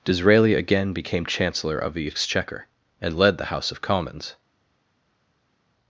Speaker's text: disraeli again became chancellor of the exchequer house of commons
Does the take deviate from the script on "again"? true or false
false